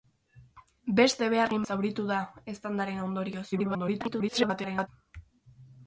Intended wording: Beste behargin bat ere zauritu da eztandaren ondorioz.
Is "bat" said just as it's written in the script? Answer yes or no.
no